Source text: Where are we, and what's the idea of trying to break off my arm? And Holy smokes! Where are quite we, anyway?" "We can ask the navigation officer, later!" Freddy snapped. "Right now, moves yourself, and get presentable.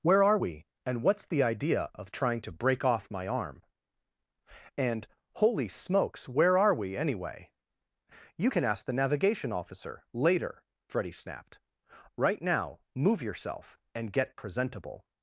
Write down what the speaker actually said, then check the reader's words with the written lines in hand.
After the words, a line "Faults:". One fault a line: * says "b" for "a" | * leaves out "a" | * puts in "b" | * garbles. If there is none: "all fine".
Where are we, and what's the idea of trying to break off my arm? And Holy smokes! Where are we, anyway?" "You can ask the navigation officer, later!" Freddy snapped. "Right now, move yourself, and get presentable.
Faults:
* leaves out "quite"
* says "You" for "We"
* says "move" for "moves"